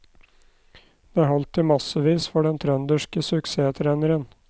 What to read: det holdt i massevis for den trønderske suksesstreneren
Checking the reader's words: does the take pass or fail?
pass